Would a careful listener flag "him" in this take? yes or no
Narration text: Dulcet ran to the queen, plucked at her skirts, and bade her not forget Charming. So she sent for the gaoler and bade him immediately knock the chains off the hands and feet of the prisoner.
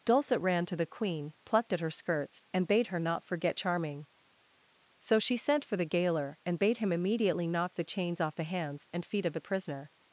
no